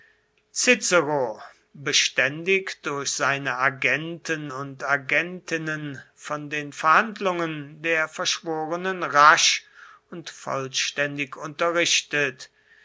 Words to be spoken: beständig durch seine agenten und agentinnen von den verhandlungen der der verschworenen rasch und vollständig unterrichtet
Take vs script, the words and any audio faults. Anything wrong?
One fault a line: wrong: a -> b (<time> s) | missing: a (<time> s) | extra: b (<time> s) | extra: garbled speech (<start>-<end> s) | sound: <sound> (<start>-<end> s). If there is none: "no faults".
missing: der (8.1 s)